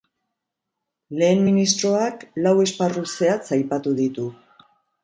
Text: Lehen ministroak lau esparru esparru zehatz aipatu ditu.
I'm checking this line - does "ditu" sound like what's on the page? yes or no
yes